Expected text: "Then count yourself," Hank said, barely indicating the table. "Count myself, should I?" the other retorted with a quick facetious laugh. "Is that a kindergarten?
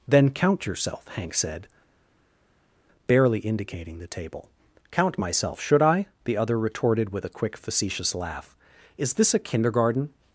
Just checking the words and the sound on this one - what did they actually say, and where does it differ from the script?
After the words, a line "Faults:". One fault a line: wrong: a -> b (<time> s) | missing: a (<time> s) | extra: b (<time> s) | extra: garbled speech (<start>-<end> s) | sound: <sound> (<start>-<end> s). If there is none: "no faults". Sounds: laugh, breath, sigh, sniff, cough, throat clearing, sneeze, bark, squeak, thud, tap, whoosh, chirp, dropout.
"Then count yourself," Hank said, barely indicating the table. "Count myself, should I?" the other retorted with a quick facetious laugh. "Is this a kindergarten?
Faults:
wrong: that -> this (9.1 s)